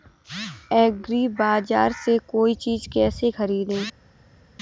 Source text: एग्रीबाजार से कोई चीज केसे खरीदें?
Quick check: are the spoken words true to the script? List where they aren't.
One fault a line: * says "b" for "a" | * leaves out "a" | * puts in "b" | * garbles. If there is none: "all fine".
all fine